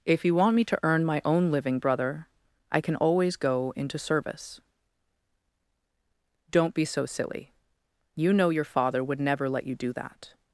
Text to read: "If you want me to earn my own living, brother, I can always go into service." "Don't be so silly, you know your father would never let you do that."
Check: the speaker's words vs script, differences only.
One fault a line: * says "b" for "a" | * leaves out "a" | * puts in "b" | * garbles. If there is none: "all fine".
all fine